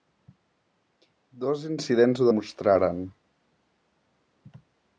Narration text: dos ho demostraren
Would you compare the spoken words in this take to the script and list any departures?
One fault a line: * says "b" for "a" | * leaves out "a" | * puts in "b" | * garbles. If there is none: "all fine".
* puts in "incidents"